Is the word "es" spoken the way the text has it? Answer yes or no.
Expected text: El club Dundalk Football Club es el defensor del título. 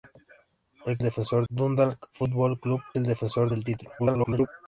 no